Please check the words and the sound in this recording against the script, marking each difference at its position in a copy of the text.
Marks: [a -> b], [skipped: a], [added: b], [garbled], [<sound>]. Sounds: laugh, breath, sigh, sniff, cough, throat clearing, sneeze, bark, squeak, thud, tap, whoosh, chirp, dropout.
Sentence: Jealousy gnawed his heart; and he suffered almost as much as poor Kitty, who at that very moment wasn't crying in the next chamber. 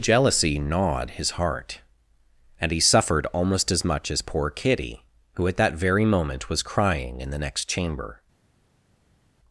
Jealousy gnawed his heart; and he suffered almost as much as poor Kitty, who at that very moment [wasn't -> was] crying in the next chamber.